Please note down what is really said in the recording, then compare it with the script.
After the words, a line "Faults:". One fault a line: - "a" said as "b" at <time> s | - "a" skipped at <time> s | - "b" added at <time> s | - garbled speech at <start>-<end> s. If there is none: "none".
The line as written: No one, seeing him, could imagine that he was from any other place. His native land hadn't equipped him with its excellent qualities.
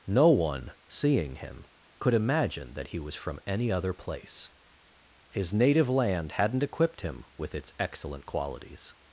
No one, seeing him, could imagine that he was from any other place. His native land hadn't equipped him with its excellent qualities.
Faults:
none